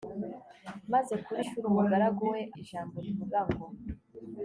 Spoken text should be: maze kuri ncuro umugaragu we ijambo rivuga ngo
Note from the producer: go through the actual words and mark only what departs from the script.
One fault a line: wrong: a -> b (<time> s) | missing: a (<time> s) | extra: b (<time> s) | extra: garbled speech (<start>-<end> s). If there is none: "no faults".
no faults